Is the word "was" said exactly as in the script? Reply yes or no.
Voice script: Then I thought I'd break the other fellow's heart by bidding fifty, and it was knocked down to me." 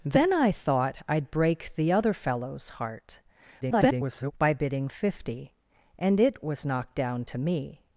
yes